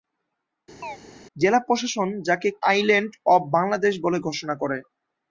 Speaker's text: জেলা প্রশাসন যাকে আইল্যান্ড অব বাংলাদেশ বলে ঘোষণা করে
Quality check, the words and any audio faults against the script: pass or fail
fail